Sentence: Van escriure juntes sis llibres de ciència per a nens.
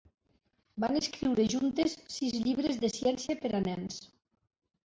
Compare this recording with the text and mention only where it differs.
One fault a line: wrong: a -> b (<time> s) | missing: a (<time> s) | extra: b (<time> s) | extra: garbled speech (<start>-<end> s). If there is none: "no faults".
no faults